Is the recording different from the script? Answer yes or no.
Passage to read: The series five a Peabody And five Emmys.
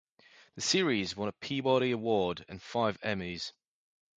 yes